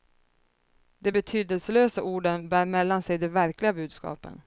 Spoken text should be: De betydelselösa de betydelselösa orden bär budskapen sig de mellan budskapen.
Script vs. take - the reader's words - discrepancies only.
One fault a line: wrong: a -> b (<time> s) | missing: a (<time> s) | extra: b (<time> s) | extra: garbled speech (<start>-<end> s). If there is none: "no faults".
missing: de betydelselösa (2.0 s)
wrong: budskapen -> mellan (2.6 s)
wrong: mellan -> verkliga (3.3 s)